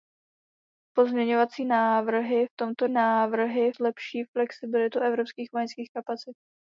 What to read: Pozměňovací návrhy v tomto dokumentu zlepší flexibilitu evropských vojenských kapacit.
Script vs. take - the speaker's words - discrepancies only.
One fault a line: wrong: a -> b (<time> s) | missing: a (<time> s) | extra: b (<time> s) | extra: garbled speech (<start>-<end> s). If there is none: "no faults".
wrong: dokumentu -> návrhy (2.9 s)